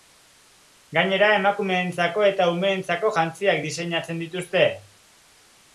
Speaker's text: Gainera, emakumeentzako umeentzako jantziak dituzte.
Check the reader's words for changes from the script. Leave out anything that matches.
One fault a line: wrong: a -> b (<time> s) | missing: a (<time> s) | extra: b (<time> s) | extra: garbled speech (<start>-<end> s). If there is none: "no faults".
extra: eta (2.3 s)
extra: diseinatzen (3.7 s)